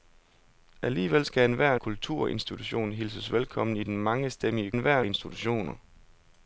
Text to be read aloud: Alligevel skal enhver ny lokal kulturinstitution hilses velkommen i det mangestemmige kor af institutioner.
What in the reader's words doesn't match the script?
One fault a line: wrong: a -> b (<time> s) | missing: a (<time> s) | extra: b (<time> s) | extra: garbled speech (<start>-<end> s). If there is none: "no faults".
missing: ny lokal (1.8 s)
wrong: kor -> enhver (4.7 s)